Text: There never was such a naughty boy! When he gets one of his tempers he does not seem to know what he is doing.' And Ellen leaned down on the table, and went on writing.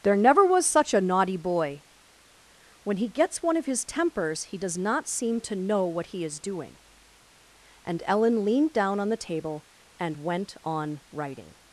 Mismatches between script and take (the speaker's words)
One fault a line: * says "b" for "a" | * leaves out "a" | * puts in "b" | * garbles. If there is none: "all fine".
all fine